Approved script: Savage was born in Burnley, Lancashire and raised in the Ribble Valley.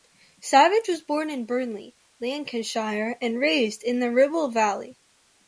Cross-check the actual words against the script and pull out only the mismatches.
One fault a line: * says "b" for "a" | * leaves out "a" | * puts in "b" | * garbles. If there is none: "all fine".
all fine